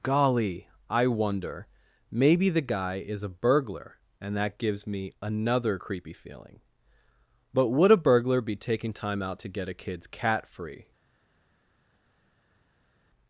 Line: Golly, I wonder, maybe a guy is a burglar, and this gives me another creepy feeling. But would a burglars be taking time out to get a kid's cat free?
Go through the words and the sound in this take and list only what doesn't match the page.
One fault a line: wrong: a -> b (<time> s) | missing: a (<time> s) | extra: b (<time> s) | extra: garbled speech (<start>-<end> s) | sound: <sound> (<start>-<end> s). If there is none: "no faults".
wrong: a -> the (2.5 s)
wrong: this -> that (4.3 s)
wrong: burglars -> burglar (8.0 s)